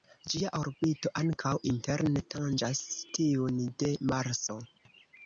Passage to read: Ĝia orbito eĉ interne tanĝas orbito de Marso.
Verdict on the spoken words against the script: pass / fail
fail